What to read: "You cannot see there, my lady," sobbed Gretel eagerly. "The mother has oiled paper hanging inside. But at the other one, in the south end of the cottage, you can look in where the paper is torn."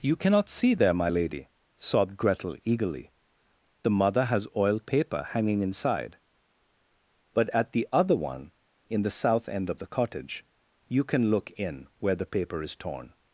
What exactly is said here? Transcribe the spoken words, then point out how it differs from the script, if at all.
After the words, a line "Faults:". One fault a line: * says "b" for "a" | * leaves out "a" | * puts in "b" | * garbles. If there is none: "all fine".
"You cannot see there, my lady," sobbed Gretel eagerly. "The mother has oiled paper hanging inside. But at the other one, in the south end of the cottage, you can look in where the paper is torn."
Faults:
all fine